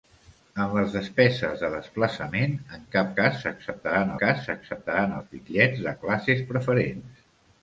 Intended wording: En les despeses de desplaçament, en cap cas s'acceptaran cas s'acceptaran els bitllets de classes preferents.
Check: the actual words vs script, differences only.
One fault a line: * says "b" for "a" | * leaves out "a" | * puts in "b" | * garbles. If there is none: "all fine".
all fine